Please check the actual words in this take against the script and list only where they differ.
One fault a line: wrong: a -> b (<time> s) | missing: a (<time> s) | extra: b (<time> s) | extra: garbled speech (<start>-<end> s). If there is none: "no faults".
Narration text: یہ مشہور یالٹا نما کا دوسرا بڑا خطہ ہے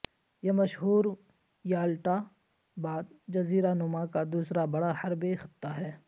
extra: بعد جزیرہ (2.8 s)
extra: حربے (5.0 s)